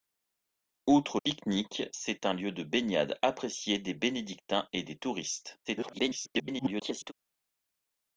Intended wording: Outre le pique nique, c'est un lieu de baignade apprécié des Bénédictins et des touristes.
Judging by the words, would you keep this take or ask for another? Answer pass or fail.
fail